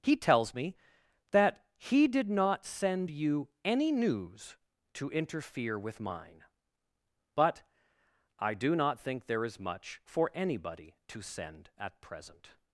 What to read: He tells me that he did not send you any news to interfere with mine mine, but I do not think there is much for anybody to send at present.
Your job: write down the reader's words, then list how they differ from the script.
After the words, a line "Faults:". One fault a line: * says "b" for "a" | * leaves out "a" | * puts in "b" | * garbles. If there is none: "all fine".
He tells me that he did not send you any news to interfere with mine, but I do not think there is much for anybody to send at present.
Faults:
* leaves out "mine"